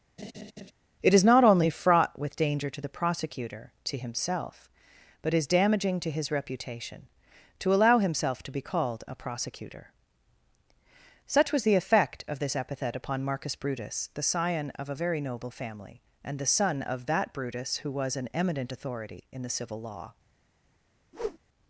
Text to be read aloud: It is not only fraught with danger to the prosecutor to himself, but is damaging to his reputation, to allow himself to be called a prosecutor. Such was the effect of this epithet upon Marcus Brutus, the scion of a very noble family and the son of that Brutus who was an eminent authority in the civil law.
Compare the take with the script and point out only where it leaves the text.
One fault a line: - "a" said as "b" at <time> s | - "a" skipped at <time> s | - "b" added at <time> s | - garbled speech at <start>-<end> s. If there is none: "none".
none